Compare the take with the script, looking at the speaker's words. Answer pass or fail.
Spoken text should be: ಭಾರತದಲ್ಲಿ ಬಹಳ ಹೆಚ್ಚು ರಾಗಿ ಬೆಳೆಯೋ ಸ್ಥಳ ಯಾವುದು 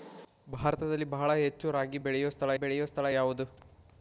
fail